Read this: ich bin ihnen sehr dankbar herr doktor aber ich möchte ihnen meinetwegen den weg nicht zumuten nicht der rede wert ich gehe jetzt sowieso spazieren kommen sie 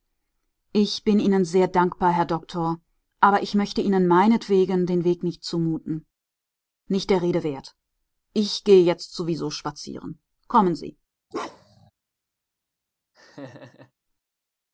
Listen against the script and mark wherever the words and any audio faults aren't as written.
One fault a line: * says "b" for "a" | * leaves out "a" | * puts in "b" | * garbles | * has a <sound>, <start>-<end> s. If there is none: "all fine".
* has a bark, 11.3-11.9 s
* has a laugh, 13.1-13.9 s